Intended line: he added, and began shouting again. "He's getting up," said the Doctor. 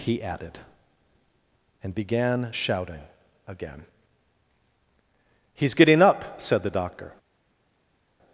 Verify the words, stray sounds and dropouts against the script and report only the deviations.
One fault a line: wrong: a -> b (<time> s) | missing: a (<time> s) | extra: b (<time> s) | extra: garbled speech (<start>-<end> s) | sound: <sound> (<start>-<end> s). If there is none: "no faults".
no faults